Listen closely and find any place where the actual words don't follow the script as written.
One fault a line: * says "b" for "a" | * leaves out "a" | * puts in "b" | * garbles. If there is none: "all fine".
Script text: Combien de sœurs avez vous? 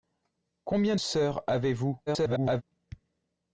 * leaves out "de"
* garbles